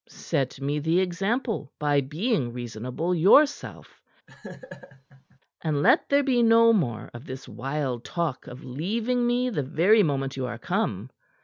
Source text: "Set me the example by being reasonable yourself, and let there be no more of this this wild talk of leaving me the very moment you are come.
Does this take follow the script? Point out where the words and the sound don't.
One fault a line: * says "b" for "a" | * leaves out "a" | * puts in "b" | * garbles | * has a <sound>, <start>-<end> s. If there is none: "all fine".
* has a laugh, 4.3-5.4 s
* leaves out "this"